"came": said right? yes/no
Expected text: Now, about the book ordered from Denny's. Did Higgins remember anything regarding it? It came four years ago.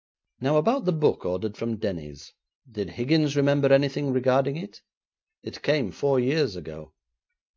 yes